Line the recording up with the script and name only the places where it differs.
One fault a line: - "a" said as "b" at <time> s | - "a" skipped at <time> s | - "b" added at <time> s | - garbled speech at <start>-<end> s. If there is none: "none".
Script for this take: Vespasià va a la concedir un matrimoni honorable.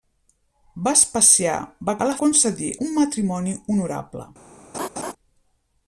none